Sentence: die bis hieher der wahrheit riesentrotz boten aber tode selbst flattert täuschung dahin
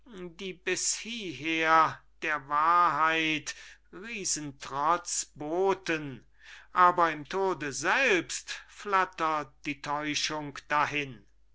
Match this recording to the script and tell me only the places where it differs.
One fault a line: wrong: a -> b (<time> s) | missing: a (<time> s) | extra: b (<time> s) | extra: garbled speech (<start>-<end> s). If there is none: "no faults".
extra: im (7.1 s)
extra: die (9.6 s)